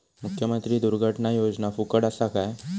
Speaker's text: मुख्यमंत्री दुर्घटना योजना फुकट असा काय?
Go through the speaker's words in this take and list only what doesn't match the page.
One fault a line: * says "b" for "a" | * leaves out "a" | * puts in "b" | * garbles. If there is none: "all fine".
all fine